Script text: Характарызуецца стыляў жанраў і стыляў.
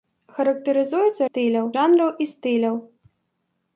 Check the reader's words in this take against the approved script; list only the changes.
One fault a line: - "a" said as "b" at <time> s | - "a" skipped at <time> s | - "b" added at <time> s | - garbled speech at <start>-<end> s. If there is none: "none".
none